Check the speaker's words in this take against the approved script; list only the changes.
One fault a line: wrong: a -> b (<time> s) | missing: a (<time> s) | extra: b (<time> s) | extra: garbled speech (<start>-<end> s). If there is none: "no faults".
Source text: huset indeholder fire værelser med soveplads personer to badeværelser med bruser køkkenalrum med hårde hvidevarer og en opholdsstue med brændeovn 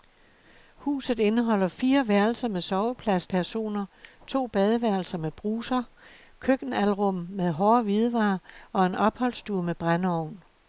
no faults